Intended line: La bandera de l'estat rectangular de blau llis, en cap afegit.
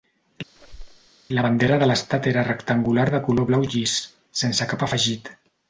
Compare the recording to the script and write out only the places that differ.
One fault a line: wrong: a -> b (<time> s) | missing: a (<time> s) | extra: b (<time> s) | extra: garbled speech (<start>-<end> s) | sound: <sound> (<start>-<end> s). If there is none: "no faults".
sound: squeak (0.6-1.1 s)
extra: era (2.3 s)
extra: color (3.3 s)
wrong: en -> sense (4.4 s)